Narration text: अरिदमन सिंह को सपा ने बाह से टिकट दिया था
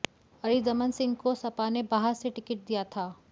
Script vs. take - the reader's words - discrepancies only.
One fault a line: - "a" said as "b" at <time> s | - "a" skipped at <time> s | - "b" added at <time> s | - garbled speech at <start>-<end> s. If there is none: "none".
none